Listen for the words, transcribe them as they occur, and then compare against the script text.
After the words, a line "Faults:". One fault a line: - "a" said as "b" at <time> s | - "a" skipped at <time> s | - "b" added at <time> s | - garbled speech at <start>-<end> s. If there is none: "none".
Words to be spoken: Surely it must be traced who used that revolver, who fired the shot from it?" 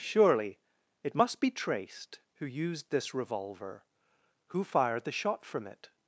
Surely it must be traced who used this revolver, who fired the shot from it?"
Faults:
- "that" said as "this" at 2.9 s